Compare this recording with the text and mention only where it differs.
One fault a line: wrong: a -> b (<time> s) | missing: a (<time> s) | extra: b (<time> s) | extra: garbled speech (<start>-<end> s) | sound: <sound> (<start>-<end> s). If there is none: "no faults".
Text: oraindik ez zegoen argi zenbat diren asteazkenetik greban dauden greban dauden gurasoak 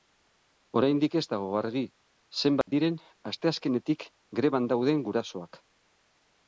wrong: zegoen -> dago (1.3 s)
sound: dropout (2.6-2.7 s)
missing: greban dauden (5.0 s)